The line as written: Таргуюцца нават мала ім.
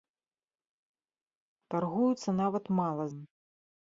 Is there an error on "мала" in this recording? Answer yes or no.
no